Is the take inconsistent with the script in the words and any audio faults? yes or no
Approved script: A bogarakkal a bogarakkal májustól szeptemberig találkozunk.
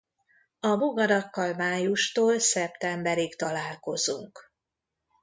yes